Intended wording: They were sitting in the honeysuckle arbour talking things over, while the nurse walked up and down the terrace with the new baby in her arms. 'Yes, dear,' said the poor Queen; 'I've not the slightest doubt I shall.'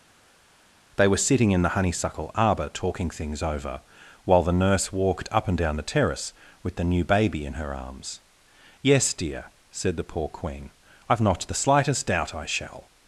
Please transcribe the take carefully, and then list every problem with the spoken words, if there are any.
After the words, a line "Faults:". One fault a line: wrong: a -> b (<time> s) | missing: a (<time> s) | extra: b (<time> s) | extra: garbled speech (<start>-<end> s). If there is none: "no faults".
They were sitting in the honeysuckle arbour talking things over, while the nurse walked up and down the terrace with the new baby in her arms. 'Yes, dear,' said the poor Queen; 'I've not the slightest doubt I shall.'
Faults:
no faults